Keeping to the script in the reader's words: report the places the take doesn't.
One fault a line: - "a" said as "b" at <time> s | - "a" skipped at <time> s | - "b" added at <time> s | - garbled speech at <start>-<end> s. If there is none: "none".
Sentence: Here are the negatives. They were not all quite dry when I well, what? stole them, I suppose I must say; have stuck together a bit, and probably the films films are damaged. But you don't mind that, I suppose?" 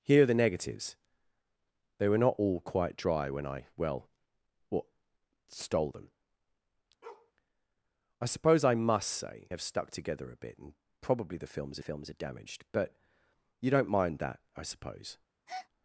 none